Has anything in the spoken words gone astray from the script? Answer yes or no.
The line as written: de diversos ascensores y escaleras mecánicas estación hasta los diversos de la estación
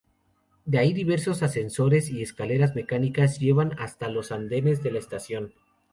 yes